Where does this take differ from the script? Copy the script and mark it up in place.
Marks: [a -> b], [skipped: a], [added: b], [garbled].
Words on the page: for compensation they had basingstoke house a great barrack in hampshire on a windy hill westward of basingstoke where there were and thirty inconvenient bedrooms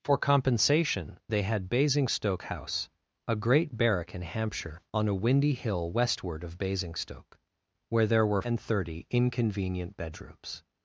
for compensation they had basingstoke house a great barrack in hampshire on a windy hill westward of basingstoke where there were and thirty inconvenient bedrooms